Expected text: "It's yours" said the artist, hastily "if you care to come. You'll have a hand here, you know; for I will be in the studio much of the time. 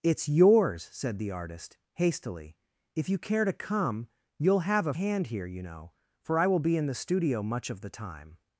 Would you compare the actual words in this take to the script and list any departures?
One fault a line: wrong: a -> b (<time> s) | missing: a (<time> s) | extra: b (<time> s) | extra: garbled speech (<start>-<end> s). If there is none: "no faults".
no faults